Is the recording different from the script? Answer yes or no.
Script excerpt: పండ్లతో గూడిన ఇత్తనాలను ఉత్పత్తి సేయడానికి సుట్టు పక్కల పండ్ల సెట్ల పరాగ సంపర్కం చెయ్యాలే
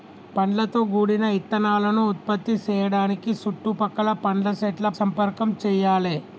yes